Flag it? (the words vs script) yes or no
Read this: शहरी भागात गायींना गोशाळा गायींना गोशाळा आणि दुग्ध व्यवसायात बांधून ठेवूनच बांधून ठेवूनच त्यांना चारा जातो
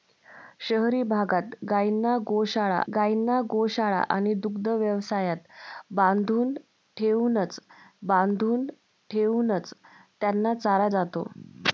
no